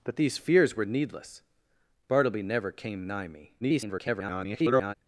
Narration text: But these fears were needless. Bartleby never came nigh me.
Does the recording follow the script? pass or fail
fail